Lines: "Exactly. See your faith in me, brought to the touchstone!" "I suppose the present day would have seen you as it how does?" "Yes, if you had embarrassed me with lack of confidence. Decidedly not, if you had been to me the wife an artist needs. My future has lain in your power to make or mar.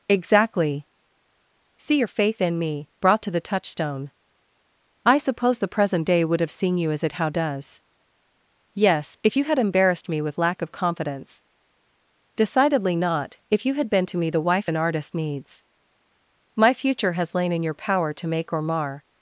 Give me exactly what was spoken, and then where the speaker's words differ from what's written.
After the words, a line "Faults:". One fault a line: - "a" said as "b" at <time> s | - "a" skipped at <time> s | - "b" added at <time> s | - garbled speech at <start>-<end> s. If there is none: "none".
"Exactly. See your faith in me, brought to the touchstone!" "I suppose the present day would have seen you as it how does?" "Yes, if you had embarrassed me with lack of confidence. Decidedly not, if you had been to me the wife an artist needs. My future has lain in your power to make or mar.
Faults:
none